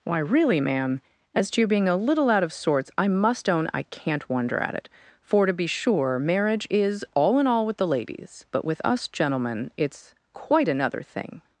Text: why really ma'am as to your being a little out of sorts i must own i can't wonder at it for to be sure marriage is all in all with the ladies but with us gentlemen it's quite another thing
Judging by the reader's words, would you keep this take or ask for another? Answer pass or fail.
pass